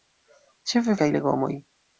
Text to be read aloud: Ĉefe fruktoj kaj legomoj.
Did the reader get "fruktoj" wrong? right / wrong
wrong